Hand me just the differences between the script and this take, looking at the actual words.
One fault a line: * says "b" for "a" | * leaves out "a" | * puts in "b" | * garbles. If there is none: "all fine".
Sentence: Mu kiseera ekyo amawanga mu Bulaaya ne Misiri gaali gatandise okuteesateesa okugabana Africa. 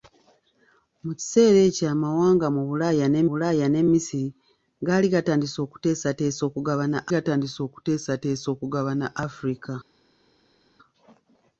* puts in "Bulaaya ne"
* puts in "gatandise okuteesateesa okugabana"